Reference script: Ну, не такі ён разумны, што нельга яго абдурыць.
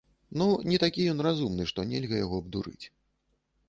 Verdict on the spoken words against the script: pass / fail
pass